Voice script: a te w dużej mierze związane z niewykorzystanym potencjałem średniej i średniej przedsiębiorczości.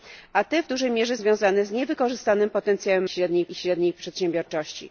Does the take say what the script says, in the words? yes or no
yes